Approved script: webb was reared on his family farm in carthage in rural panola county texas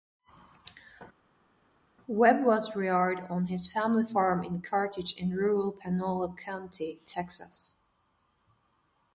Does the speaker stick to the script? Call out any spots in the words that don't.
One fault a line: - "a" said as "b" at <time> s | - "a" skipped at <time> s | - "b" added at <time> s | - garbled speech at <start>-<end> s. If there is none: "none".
none